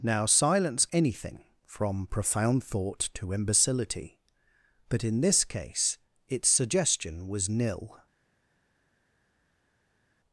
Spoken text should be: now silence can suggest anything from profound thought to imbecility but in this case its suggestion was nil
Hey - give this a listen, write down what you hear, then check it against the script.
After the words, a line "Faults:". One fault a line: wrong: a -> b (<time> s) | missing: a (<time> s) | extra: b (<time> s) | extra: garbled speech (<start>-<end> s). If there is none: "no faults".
now silence anything from profound thought to imbecility but in this case its suggestion was nil
Faults:
missing: can suggest (0.9 s)